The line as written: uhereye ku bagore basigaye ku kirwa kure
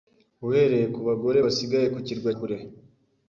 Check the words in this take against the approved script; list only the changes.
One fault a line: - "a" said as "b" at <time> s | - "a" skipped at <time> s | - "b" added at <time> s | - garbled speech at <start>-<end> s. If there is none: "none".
none